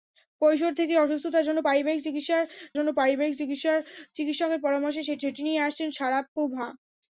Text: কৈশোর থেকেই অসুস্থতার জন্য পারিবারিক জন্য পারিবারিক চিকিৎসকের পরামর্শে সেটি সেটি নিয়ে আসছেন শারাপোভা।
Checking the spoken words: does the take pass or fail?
pass